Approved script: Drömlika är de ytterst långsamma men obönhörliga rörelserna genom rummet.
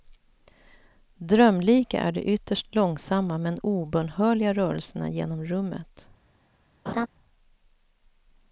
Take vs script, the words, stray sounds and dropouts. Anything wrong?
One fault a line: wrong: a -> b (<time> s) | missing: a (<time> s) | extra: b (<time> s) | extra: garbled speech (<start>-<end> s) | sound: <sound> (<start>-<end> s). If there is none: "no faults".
sound: laugh (6.9-7.1 s)